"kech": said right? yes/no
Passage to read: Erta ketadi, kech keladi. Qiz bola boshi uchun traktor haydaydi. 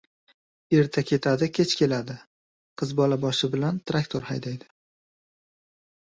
yes